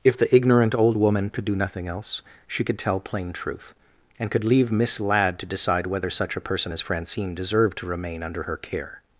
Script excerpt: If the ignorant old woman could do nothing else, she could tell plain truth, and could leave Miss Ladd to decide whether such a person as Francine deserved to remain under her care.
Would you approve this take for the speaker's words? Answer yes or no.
yes